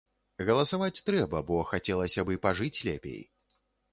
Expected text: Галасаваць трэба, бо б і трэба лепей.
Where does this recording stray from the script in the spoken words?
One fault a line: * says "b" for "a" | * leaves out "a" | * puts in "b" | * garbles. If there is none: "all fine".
* puts in "хацелася"
* says "пажыць" for "трэба"